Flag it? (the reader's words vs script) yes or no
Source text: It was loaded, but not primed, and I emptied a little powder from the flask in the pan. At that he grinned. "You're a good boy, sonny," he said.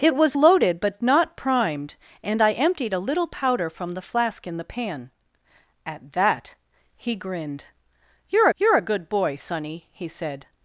yes